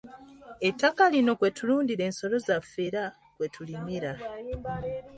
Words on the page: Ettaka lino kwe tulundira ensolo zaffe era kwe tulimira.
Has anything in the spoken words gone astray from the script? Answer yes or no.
no